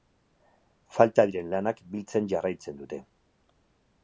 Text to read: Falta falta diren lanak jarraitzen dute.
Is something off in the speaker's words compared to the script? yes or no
yes